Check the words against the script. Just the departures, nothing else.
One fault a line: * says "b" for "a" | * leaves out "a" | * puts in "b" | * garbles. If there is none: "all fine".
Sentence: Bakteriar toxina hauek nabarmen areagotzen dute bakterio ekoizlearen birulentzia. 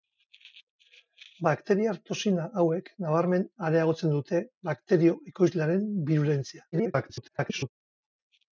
* garbles